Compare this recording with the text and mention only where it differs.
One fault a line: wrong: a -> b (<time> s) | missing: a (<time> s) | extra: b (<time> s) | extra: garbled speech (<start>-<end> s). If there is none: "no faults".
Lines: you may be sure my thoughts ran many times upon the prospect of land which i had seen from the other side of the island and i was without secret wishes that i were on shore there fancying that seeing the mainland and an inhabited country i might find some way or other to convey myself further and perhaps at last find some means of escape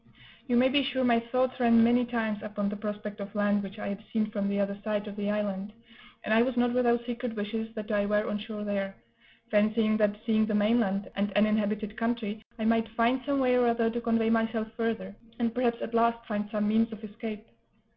extra: not (6.6 s)